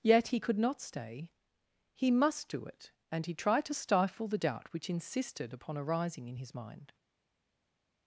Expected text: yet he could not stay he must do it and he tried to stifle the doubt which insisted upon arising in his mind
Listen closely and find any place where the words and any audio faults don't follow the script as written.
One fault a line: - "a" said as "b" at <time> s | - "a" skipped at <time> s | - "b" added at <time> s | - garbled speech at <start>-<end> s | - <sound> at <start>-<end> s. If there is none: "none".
none